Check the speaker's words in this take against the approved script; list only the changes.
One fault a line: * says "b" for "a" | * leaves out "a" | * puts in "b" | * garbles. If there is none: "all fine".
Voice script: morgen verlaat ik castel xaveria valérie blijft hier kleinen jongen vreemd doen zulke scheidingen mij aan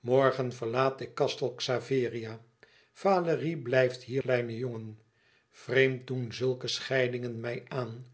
all fine